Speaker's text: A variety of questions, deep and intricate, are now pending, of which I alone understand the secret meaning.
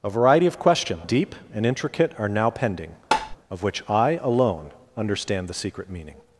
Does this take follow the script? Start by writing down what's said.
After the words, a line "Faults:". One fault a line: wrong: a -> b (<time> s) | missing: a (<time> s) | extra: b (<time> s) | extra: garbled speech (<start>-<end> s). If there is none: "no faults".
A variety of questions, deep and intricate, are now pending, of which I alone understand the secret meaning.
Faults:
no faults